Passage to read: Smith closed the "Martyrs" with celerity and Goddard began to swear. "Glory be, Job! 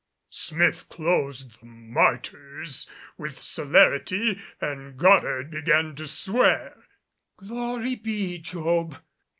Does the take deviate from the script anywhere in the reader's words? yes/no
yes